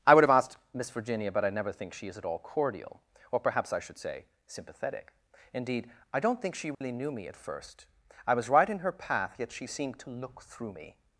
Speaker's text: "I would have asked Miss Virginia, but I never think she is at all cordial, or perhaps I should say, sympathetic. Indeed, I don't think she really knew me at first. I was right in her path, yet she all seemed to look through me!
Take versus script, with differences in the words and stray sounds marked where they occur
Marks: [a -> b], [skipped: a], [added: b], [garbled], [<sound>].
"I would have asked Miss Virginia, but I never think she is at all cordial, or perhaps I should say, sympathetic. Indeed, I don't think she really [dropout] knew me at first. I was right in her path, yet she [skipped: all] seemed to look through me!